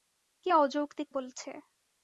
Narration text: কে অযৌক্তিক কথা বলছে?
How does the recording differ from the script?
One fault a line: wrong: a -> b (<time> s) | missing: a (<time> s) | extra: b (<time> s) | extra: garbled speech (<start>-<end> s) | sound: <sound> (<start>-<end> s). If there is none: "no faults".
missing: কথা (1.1 s)